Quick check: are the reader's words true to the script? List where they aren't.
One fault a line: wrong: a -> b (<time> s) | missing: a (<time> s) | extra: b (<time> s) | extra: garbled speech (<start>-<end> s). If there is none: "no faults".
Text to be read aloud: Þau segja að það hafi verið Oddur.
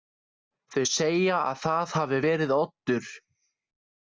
no faults